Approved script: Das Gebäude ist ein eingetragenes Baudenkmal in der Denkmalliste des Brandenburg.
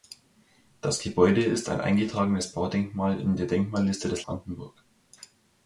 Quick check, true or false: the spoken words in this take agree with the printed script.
true